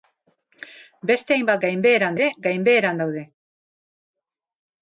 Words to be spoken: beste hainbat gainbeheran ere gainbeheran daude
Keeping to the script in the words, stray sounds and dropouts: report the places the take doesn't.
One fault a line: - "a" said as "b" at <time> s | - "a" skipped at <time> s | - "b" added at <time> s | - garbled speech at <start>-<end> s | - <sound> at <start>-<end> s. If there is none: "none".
none